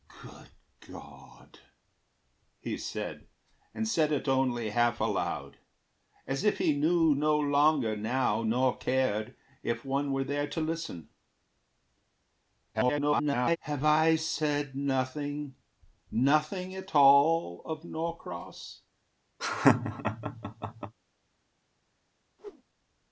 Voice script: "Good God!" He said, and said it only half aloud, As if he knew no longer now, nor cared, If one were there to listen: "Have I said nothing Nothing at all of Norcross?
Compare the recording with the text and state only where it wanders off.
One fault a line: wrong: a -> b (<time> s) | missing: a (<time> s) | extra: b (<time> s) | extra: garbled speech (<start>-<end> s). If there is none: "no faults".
extra: garbled speech (12.7-13.6 s)